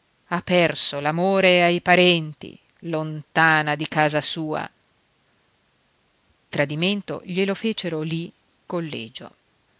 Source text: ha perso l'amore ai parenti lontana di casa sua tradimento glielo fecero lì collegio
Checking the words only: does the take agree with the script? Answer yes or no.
yes